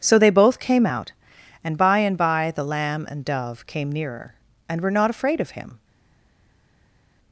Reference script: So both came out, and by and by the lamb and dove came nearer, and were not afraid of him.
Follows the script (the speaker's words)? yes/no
no